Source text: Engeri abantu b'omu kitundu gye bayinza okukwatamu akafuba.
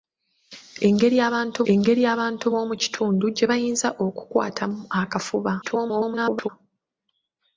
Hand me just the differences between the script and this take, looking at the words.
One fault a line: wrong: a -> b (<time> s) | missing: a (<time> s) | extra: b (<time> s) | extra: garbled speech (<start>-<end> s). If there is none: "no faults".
extra: engeri abantu (1.7 s)
extra: garbled speech (5.6-6.5 s)